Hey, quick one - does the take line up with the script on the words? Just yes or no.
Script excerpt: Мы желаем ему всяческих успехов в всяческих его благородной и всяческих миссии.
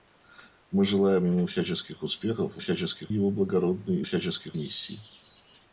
yes